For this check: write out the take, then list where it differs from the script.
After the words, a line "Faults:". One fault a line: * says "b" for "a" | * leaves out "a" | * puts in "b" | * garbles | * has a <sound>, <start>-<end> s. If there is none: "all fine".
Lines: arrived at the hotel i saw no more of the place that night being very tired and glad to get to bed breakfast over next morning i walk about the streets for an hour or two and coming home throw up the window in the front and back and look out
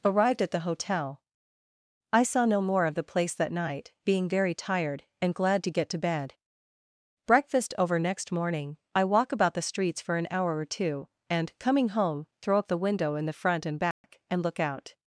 arrived at the hotel i saw no more of the place that night being very tired and glad to get to bed breakfast over next morning i walk about the streets for an hour or two and coming home throw up the window in the front and back and look out
Faults:
* has a dropout, 13.9-14.0 s